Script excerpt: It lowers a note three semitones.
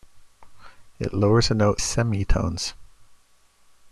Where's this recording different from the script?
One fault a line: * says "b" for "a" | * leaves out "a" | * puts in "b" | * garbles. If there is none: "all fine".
* leaves out "three"